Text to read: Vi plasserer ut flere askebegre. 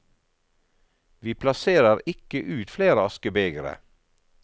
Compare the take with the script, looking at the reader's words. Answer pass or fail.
fail